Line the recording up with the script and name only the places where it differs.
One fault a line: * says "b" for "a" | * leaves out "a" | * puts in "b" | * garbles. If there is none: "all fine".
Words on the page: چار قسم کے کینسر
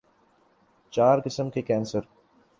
all fine